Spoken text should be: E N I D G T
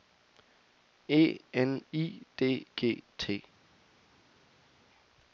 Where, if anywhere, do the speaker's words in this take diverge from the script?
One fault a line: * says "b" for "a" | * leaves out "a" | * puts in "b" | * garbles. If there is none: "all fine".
all fine